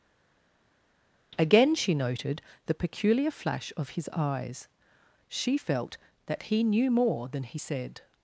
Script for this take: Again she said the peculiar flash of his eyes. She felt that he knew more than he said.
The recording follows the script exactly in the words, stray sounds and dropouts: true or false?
false